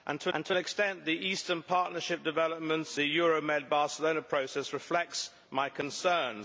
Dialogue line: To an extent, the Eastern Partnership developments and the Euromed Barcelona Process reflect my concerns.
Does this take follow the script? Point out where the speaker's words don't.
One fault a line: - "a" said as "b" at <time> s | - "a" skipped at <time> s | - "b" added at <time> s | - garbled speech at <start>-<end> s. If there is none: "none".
- "to" added at 0.3 s
- "and" skipped at 3.0 s